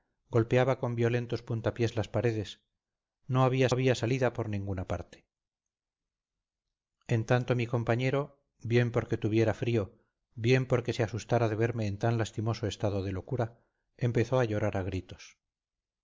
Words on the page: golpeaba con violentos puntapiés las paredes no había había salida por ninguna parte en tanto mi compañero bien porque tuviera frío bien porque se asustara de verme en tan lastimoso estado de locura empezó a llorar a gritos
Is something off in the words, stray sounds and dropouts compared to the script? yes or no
no